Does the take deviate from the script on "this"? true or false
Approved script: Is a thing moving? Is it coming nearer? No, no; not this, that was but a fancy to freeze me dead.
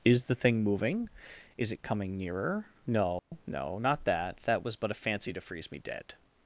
true